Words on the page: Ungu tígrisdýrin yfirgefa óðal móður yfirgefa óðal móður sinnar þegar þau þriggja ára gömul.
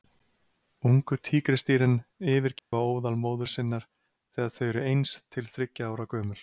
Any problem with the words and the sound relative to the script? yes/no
yes